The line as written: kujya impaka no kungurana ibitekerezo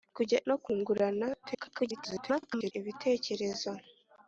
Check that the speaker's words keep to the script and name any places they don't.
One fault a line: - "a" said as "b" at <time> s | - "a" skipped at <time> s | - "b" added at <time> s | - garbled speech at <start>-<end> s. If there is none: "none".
- "impaka" skipped at 0.4 s
- garbled speech at 1.4-2.7 s